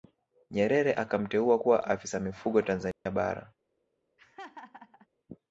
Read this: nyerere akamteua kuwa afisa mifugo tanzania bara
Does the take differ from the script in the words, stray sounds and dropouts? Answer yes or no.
yes